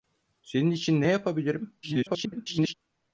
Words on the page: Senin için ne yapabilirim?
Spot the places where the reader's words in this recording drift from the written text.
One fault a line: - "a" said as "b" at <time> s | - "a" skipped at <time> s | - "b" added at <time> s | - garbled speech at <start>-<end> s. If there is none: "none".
- garbled speech at 1.8-2.7 s